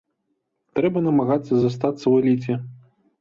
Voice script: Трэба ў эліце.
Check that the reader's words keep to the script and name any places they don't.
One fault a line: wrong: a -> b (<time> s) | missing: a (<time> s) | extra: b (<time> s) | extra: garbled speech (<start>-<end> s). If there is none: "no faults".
extra: намагацца застацца (1.1 s)